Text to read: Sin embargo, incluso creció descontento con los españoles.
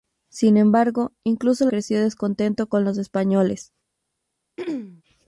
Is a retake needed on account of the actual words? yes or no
no